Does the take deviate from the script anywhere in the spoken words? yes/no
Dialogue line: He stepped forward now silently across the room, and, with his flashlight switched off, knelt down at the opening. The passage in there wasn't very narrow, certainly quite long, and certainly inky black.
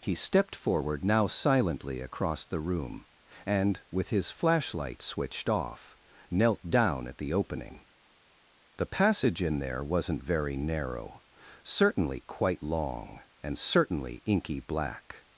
no